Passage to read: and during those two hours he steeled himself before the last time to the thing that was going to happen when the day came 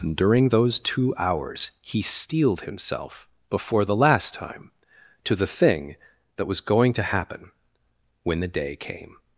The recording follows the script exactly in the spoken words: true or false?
true